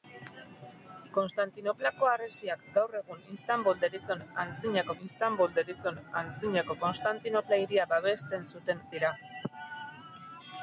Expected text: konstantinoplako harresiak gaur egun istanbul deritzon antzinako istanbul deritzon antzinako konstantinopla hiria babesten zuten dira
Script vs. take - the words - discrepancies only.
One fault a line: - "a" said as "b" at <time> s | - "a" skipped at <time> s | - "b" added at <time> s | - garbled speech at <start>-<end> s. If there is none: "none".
none